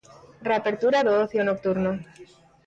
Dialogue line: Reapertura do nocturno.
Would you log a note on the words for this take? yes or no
yes